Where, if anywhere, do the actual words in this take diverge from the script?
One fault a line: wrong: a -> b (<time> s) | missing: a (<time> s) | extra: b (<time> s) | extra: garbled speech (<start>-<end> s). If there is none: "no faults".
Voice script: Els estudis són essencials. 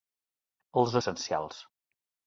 missing: estudis són (0.9 s)